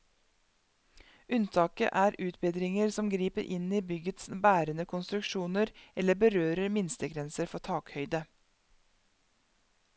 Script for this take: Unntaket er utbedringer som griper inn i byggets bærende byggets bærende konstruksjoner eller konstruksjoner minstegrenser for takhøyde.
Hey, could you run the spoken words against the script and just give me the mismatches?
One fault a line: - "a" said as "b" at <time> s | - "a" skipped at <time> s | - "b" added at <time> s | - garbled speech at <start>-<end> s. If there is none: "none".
- "byggets bærende" skipped at 4.8 s
- "konstruksjoner" said as "berører" at 6.2 s